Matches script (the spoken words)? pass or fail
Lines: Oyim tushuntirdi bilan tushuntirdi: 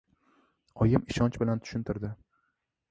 fail